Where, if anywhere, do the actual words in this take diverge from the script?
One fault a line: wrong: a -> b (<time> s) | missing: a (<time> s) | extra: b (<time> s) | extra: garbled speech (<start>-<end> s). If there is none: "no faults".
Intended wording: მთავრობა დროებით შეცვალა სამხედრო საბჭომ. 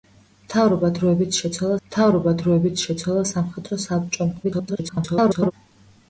extra: მთავრობა დროებით შეცვალა (1.9 s)
extra: garbled speech (4.4-5.5 s)